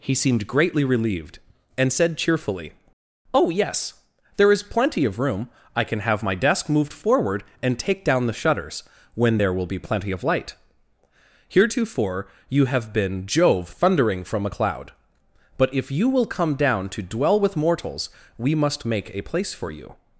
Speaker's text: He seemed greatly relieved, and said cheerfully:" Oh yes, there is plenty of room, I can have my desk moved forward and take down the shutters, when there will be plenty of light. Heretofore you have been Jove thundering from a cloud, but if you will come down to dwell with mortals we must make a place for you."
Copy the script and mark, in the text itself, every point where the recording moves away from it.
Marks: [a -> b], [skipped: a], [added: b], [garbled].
He seemed greatly relieved, and said cheerfully:" Oh yes, there is plenty of room, I can have my desk moved forward and take down the shutters, when there will be plenty of light. Heretofore you have been Jove thundering from a cloud, but if you will come down to dwell with mortals we must make a place for you."